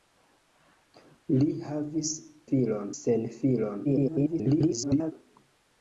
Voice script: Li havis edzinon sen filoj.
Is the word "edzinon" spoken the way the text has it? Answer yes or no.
no